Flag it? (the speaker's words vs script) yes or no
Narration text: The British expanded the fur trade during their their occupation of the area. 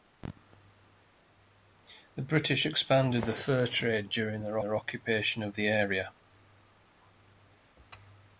no